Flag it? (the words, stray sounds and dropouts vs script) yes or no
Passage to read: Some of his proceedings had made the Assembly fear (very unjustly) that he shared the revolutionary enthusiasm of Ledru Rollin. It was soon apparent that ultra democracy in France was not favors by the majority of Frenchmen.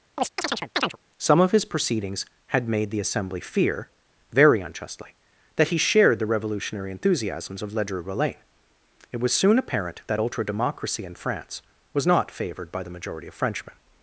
yes